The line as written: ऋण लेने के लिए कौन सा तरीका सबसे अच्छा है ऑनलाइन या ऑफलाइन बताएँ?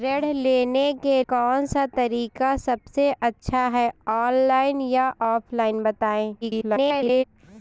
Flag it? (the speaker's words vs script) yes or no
yes